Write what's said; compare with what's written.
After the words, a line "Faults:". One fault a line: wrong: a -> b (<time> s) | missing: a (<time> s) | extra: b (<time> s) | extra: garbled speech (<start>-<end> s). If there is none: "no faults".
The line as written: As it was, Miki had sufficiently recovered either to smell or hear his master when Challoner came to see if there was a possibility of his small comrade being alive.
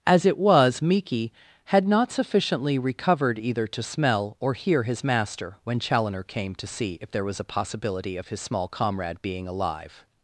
As it was, Miki had not sufficiently recovered either to smell or hear his master when Challoner came to see if there was a possibility of his small comrade being alive.
Faults:
extra: not (1.9 s)